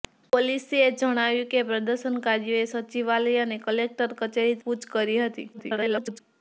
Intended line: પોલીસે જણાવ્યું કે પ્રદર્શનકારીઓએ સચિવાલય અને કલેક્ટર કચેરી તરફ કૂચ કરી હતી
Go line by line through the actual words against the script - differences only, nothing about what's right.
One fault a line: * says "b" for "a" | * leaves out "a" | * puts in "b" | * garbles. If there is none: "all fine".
* leaves out "તરફ"
* garbles